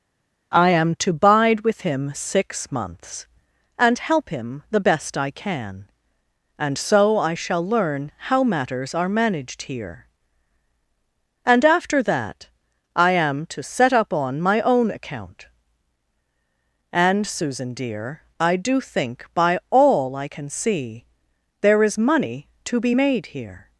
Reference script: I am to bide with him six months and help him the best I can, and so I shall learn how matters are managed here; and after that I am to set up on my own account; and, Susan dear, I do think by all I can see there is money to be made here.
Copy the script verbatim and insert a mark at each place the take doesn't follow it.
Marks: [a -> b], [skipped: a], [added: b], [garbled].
I am to bide with him six months and help him the best I can, and so I shall learn how matters are managed here; and after that I am to set up on my own account; and, Susan dear, I do think by all I can see there is money to be made here.